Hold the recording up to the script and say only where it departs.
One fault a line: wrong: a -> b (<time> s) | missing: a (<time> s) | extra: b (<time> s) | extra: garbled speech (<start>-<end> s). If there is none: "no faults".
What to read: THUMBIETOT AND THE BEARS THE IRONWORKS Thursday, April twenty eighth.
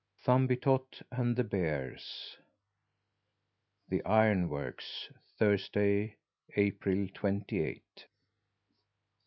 no faults